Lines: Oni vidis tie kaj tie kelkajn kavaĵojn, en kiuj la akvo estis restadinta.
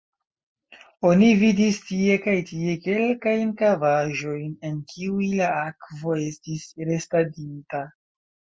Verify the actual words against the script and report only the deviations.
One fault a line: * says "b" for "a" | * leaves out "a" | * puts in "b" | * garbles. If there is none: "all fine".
all fine